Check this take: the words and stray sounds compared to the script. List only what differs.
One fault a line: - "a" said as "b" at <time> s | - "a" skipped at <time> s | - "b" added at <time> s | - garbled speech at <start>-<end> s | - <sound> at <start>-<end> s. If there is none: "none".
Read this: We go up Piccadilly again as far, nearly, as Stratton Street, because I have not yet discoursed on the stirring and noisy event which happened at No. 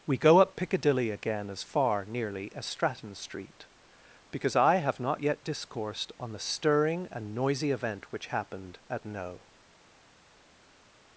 none